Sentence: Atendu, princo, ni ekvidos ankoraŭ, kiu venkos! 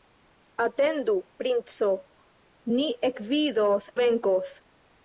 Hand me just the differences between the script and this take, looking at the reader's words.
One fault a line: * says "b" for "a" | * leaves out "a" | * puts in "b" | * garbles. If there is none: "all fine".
* leaves out "ankoraŭ kiu"